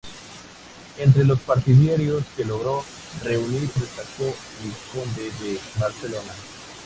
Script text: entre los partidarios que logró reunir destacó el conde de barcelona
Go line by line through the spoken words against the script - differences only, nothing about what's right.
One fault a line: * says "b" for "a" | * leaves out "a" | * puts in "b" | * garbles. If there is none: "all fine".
all fine